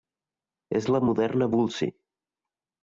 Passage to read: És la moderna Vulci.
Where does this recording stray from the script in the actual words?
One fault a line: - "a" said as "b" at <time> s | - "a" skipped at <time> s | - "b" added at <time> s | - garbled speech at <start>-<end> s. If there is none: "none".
none